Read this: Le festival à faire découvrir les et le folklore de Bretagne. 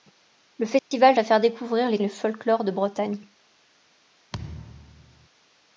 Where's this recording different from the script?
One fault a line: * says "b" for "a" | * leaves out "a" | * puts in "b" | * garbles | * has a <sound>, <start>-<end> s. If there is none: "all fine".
* has a dropout, 0.8-0.9 s
* has a thud, 4.3-5.3 s